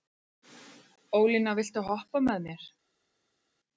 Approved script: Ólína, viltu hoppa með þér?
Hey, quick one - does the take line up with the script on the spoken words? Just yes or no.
no